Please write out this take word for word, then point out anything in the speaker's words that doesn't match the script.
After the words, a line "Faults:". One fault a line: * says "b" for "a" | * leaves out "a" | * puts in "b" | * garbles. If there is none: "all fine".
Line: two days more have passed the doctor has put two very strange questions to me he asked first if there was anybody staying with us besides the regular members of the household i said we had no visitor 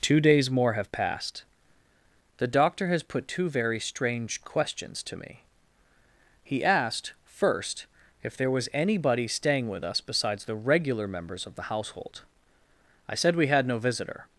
two days more have passed the doctor has put two very strange questions to me he asked first if there was anybody staying with us besides the regular members of the household i said we had no visitor
Faults:
all fine